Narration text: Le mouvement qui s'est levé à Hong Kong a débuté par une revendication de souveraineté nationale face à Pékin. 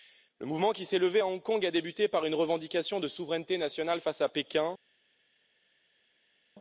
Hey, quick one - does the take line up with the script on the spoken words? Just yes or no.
yes